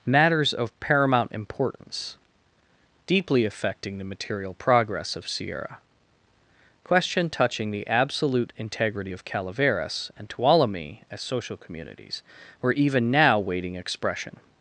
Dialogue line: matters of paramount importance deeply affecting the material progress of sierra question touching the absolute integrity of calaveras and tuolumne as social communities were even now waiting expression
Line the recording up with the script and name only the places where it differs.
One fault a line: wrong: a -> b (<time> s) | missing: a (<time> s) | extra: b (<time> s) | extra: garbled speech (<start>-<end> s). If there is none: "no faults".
no faults